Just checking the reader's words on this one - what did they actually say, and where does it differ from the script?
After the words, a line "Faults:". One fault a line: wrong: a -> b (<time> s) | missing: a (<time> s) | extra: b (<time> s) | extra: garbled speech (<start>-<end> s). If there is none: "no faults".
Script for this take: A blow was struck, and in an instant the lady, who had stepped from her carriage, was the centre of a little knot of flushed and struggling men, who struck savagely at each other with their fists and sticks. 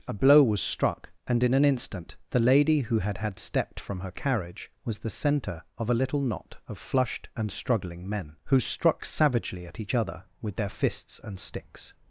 A blow was struck, and in an instant the lady, who had had stepped from her carriage, was the centre of a little knot of flushed and struggling men, who struck savagely at each other with their fists and sticks.
Faults:
extra: had (3.2 s)